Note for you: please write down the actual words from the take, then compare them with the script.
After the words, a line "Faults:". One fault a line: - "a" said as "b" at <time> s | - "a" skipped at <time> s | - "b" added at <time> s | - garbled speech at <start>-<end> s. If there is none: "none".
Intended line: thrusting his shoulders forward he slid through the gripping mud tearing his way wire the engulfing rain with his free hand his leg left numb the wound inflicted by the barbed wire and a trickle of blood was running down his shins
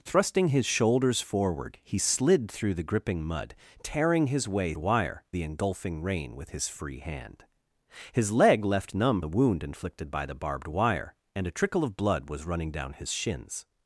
thrusting his shoulders forward he slid through the gripping mud tearing his way wire the engulfing rain with his free hand his leg left numb the wound inflicted by the barbed wire and a trickle of blood was running down his shins
Faults:
none